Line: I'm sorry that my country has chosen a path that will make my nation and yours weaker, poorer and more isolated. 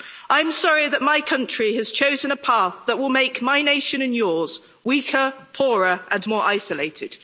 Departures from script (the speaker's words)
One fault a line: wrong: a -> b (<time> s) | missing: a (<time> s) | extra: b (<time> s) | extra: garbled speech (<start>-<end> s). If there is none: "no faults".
no faults